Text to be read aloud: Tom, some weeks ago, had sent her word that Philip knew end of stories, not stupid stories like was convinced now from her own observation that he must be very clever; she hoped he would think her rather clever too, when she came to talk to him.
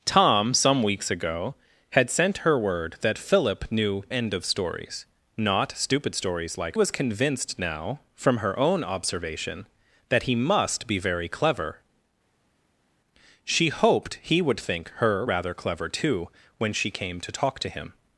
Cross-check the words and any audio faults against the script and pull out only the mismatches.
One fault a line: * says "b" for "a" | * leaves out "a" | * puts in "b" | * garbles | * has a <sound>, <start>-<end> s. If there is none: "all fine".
all fine